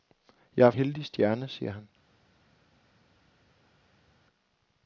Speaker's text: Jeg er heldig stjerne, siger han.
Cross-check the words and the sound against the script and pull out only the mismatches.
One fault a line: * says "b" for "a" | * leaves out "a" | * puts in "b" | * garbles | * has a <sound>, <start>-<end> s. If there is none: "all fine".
all fine